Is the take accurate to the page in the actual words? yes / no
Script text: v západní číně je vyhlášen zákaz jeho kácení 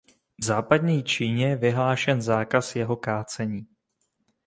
yes